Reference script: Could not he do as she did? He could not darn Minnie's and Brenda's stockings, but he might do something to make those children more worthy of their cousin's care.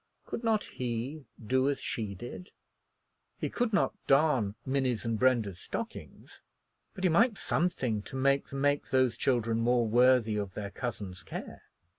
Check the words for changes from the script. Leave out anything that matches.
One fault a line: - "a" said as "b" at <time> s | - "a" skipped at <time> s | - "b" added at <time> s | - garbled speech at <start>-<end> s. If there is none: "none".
- "do" skipped at 7.4 s
- "make" added at 8.5 s